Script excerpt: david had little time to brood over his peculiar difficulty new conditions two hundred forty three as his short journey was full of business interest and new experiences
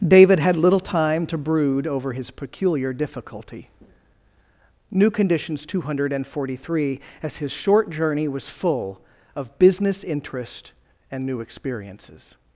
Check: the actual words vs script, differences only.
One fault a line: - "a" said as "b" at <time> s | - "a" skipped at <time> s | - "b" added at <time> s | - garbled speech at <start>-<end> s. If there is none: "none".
none